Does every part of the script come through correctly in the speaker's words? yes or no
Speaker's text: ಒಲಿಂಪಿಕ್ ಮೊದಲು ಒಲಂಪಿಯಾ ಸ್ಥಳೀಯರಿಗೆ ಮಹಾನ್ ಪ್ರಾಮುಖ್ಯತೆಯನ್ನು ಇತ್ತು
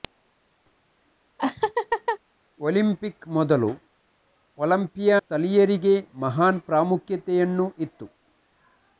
yes